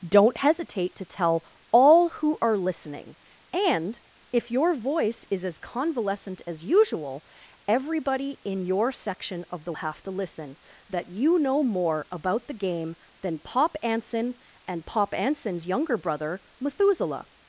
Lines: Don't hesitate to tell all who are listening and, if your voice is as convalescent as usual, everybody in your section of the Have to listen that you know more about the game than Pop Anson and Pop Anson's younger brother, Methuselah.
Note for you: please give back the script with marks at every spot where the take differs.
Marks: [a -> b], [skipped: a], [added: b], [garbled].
Don't hesitate to tell all who are listening and, if your voice is as convalescent as usual, everybody in your section of the Have to listen that you know more about the game than Pop Anson and Pop Anson's younger brother, Methuselah.